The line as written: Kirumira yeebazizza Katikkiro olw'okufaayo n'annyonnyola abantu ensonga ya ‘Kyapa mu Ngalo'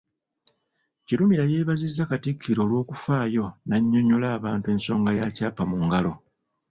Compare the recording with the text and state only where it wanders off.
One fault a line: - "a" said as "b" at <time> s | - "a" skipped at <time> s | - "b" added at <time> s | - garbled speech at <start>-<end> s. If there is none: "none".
none